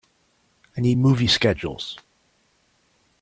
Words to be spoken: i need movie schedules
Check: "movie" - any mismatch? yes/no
no